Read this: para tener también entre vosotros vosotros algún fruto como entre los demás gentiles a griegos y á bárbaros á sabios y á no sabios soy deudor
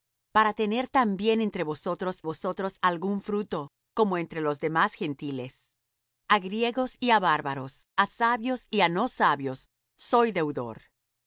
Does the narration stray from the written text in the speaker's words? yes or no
no